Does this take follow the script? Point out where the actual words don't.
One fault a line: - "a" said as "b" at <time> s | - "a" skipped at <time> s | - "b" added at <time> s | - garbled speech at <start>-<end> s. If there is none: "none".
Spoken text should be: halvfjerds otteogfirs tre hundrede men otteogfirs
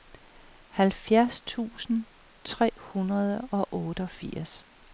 - "otteogfirs" said as "tusind" at 1.4 s
- "men" said as "og" at 3.5 s